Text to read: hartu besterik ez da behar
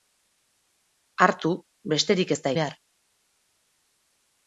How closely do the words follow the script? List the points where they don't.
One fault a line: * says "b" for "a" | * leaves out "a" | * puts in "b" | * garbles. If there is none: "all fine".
all fine